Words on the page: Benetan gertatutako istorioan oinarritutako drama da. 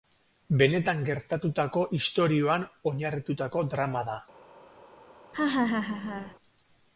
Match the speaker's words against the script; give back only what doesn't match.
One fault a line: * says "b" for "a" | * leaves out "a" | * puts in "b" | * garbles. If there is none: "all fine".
all fine